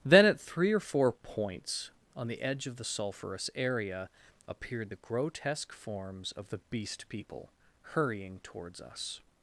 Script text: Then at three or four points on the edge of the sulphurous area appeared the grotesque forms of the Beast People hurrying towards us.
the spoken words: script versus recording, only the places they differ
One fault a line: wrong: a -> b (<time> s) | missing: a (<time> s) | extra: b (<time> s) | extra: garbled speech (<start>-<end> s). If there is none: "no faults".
no faults